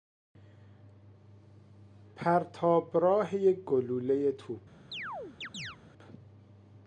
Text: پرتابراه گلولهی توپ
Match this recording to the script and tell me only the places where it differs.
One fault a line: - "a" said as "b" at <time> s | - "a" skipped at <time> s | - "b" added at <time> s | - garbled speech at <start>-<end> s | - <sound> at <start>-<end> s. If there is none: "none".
- "یک" added at 3.4 s
- chirp at 4.9-5.8 s